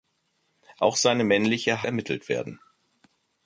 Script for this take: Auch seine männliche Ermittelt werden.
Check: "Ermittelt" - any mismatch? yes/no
no